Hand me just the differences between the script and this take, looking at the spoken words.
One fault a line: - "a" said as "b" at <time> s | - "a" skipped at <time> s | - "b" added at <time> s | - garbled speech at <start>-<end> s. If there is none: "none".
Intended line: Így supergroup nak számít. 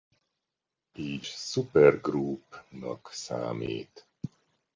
none